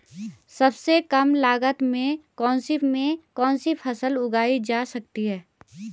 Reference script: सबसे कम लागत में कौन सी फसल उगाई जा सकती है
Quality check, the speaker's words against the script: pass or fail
fail